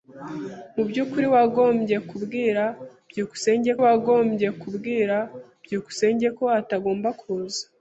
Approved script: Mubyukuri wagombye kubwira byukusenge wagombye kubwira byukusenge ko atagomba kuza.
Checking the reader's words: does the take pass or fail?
pass